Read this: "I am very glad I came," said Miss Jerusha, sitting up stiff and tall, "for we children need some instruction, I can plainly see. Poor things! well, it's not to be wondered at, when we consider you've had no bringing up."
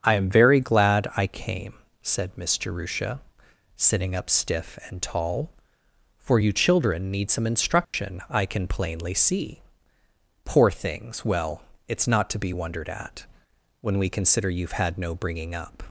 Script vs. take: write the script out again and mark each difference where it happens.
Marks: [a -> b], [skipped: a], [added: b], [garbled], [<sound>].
"I am very glad I came," said Miss Jerusha, sitting up stiff and tall, "for [we -> you] children need some instruction, [dropout] I can plainly see. Poor things! well, it's not to be wondered at, when we consider you've had no bringing up."